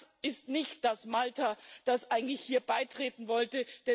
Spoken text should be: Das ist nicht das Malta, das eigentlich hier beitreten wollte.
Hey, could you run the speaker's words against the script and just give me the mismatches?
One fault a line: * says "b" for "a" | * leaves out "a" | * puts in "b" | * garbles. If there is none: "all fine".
all fine